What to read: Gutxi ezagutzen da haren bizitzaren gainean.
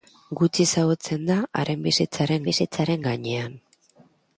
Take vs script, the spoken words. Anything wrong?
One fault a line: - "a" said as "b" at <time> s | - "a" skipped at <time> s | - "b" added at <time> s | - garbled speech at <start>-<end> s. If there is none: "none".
- "bizitzaren" added at 2.5 s